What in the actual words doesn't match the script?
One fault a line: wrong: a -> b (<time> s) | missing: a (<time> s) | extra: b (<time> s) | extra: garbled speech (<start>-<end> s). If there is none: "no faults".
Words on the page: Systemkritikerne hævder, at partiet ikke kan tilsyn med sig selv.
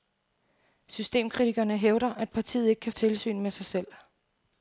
no faults